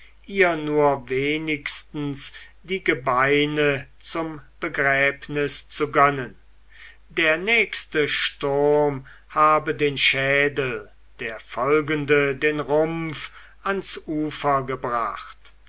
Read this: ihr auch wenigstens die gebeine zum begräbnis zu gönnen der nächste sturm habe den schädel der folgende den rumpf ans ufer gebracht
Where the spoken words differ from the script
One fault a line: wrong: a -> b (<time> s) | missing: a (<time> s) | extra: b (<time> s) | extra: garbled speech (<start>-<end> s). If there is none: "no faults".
wrong: auch -> nur (0.6 s)